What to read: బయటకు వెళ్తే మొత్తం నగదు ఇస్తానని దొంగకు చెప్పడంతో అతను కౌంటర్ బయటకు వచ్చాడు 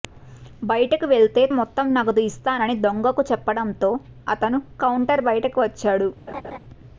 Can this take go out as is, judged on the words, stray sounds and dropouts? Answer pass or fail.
fail